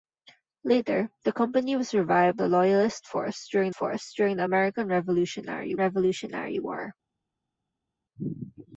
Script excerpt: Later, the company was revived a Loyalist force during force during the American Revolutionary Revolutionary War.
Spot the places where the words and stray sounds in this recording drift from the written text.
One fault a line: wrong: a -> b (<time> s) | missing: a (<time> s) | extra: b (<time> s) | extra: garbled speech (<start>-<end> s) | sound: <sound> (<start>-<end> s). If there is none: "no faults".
no faults